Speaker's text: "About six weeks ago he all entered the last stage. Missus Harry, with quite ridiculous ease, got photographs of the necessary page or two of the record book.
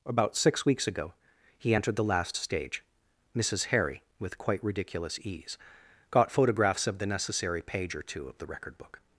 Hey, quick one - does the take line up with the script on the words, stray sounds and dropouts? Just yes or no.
no